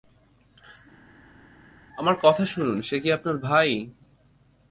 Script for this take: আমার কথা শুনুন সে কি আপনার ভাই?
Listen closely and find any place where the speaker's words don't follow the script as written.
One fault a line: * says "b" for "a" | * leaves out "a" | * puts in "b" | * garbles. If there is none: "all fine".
all fine